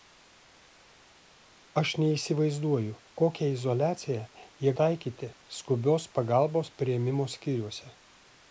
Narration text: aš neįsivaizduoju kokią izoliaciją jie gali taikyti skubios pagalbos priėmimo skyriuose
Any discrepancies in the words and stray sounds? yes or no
yes